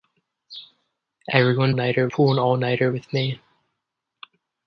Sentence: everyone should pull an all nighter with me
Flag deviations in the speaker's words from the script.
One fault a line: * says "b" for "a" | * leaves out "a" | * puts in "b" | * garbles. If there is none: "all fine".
* says "nighter" for "should"